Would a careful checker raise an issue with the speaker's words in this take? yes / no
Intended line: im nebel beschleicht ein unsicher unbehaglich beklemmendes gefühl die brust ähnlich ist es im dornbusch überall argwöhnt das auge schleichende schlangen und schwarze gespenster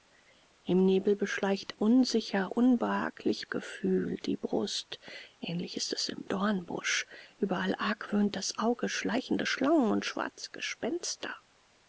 yes